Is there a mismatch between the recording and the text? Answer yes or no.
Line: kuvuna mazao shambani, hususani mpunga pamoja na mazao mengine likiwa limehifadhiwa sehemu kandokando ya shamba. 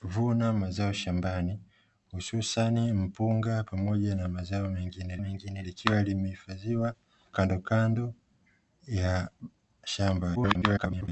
yes